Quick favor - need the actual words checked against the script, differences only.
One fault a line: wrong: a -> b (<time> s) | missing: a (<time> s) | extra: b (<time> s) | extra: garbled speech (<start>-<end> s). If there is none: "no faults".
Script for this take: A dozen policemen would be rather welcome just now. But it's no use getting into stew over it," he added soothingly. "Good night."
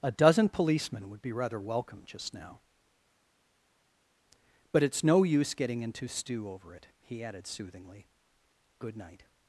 no faults